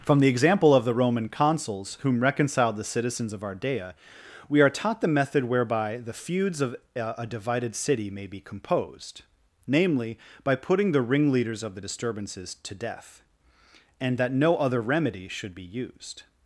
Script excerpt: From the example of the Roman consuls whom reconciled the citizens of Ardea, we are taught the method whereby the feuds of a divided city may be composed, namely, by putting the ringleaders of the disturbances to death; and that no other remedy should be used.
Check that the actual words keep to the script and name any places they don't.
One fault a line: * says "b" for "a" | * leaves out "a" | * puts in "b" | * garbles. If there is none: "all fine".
all fine